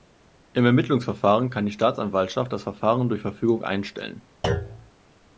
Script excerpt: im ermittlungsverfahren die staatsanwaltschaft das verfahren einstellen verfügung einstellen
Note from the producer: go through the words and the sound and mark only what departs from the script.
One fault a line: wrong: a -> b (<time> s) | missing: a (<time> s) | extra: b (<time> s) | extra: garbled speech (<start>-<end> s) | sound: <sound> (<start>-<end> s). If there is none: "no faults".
extra: kann (1.5 s)
wrong: einstellen -> durch (3.1 s)
sound: thud (4.4-4.9 s)